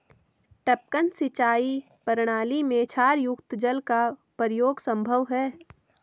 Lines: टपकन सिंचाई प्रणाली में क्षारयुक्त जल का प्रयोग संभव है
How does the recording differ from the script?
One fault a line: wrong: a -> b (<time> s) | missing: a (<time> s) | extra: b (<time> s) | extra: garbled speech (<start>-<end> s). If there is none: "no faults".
no faults